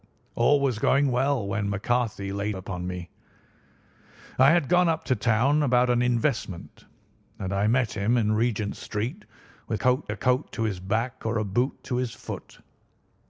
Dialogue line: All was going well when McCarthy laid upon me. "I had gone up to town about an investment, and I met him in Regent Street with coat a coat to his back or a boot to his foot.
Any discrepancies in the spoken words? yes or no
no